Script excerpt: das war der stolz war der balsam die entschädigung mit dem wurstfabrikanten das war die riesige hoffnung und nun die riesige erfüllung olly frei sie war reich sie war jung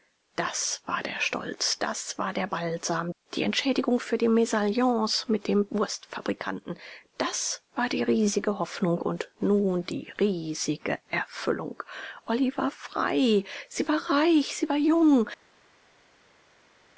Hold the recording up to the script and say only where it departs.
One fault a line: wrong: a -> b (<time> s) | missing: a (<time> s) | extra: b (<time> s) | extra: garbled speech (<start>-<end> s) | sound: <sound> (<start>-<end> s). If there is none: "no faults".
extra: das (1.8 s)
extra: für die mesalliance (4.0 s)
extra: war (12.6 s)